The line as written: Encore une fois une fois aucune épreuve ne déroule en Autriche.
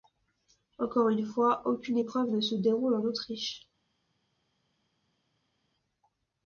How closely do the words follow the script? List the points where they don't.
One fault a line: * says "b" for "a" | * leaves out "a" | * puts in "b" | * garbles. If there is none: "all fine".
* leaves out "une fois"
* puts in "se"